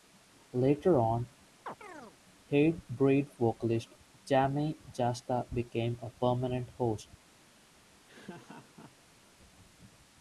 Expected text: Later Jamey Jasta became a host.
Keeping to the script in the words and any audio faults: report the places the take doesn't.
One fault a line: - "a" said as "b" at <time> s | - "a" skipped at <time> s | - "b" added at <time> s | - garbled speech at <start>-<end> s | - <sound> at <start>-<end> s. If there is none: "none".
- "on Hatebreed vocalist" added at 1.0 s
- chirp at 1.7-2.2 s
- "permanent" added at 6.1 s
- laugh at 8.1-9.2 s